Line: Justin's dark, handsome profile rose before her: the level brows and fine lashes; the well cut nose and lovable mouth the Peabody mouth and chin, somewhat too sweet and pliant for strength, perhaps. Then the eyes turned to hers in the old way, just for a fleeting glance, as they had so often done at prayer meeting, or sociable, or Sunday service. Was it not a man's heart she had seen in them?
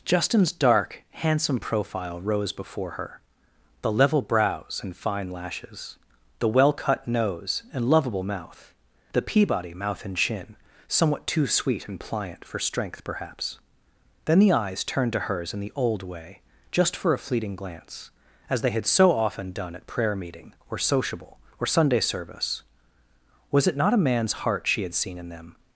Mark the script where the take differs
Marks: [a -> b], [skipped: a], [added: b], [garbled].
Justin's dark, handsome profile rose before her: the level brows and fine lashes; the well cut nose and lovable mouth the Peabody mouth and chin, somewhat too sweet and pliant for strength, perhaps. Then the eyes turned to hers in the old way, just for a fleeting glance, as they had so often done at prayer meeting, or sociable, or Sunday service. Was it not a man's heart she had seen in them?